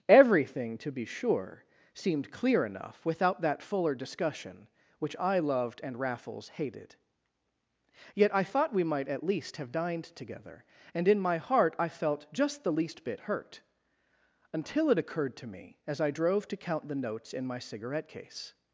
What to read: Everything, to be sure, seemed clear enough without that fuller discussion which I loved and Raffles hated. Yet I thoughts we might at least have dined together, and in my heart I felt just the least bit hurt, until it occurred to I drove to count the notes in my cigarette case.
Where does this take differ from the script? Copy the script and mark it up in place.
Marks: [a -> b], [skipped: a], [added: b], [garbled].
Everything, to be sure, seemed clear enough without that fuller discussion which I loved and Raffles hated. Yet I [thoughts -> thought] we might at least have dined together, and in my heart I felt just the least bit hurt, until it occurred to [added: me as] I drove to count the notes in my cigarette case.